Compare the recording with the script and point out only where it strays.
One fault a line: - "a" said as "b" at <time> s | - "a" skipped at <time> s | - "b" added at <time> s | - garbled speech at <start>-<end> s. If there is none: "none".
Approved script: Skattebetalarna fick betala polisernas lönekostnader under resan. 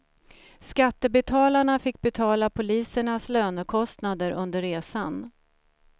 none